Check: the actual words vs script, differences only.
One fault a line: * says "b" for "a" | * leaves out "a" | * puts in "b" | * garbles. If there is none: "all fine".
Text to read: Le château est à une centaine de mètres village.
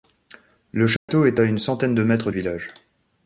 all fine